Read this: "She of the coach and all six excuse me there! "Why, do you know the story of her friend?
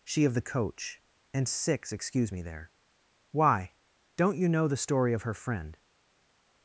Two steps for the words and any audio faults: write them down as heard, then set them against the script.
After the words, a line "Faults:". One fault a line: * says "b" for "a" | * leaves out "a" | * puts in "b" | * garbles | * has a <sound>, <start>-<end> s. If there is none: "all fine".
"She of the coach and six excuse me there! "Why, don't you know the story of her friend?
Faults:
* leaves out "all"
* says "don't" for "do"